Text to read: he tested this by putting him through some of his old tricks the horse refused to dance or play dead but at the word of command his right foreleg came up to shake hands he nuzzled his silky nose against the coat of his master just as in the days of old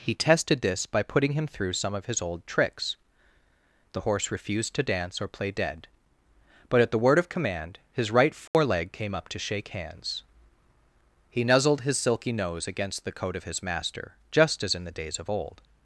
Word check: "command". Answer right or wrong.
right